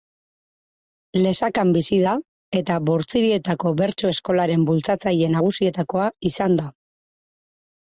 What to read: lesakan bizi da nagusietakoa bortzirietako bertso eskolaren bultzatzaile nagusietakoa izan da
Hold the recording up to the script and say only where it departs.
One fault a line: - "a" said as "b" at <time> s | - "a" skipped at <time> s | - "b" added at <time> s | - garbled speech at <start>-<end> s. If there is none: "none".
- "nagusietakoa" said as "eta" at 2.6 s